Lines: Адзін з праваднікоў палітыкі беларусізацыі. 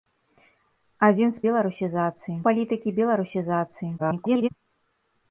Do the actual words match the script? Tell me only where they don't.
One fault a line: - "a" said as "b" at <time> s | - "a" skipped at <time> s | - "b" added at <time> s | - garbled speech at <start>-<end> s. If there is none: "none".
- "праваднікоў" said as "беларусізацыі" at 1.5 s
- garbled speech at 4.0-4.5 s